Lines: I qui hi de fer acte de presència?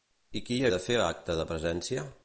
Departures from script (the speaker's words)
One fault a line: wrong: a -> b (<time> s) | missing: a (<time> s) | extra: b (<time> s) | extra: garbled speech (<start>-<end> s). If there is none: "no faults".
no faults